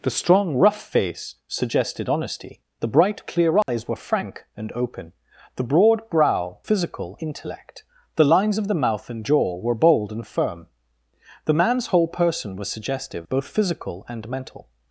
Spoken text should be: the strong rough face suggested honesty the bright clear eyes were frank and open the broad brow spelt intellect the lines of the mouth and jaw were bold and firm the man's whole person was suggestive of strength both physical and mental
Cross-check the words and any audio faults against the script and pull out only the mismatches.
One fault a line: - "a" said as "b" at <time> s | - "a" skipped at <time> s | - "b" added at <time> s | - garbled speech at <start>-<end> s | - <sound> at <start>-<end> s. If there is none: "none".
- dropout at 3.6-3.7 s
- "spelt" said as "physical" at 6.6 s
- "of strength" skipped at 13.3 s